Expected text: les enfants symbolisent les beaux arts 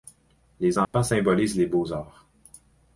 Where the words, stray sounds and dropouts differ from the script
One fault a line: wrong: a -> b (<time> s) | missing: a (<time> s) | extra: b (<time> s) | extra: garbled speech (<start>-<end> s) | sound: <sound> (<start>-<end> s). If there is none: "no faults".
sound: dropout (0.8-0.9 s)